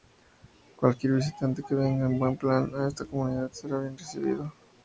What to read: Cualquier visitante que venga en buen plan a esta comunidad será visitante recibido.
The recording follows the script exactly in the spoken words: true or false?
false